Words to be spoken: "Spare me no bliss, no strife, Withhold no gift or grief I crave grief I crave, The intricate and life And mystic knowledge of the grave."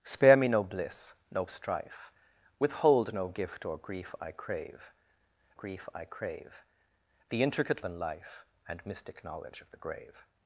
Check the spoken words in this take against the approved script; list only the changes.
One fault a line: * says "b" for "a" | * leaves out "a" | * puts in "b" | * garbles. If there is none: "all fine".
all fine